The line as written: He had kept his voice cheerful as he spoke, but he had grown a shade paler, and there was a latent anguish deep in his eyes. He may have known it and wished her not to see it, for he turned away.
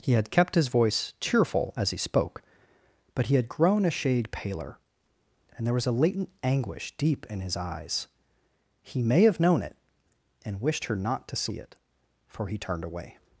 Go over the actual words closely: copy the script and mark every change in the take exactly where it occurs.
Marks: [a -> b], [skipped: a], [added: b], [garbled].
He had kept his voice cheerful as he spoke, but he had grown a shade paler, and there was a latent anguish deep in his eyes. He may have known it and wished her not to see it, for he turned away.